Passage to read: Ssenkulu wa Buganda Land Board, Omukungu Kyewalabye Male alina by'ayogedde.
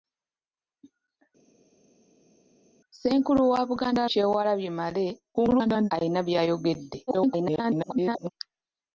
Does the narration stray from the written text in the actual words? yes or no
yes